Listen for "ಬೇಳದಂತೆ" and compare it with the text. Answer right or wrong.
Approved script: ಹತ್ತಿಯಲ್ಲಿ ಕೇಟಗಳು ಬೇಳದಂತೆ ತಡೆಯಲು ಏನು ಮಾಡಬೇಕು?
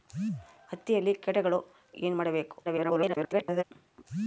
wrong